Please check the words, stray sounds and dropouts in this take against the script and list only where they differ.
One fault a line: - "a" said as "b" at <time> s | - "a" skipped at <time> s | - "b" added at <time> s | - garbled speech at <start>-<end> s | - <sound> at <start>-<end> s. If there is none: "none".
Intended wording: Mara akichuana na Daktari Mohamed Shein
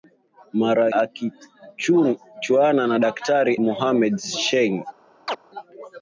- chirp at 5.3-5.4 s